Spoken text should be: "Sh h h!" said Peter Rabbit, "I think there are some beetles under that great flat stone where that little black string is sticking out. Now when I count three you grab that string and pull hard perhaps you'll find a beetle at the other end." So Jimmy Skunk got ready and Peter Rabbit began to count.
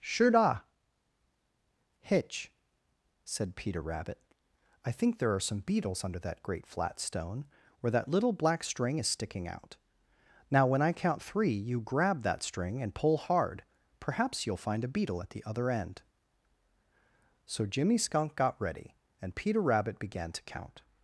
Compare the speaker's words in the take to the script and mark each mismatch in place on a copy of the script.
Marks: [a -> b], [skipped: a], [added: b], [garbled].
["Sh h h!" -> Sure da hitch] said Peter Rabbit, "I think there are some beetles under that great flat stone where that little black string is sticking out. Now when I count three you grab that string and pull hard perhaps you'll find a beetle at the other end." So Jimmy Skunk got ready and Peter Rabbit began to count.